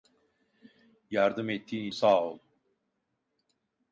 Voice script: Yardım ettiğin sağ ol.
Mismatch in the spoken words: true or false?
false